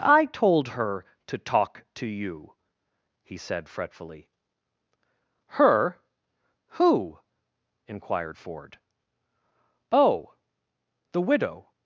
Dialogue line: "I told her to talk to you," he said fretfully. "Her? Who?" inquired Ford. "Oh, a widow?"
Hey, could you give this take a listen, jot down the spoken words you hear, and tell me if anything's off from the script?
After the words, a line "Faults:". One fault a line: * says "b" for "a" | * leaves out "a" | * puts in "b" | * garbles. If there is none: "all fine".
"I told her to talk to you," he said fretfully. "Her? Who?" inquired Ford. "Oh, the widow?"
Faults:
* says "the" for "a"